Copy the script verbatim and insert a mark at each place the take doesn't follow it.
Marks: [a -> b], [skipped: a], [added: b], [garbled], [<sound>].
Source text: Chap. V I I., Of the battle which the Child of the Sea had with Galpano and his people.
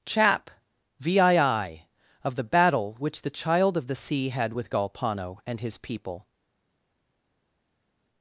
Chap. V I I., Of the battle which the Child of the Sea had with Galpano and his people.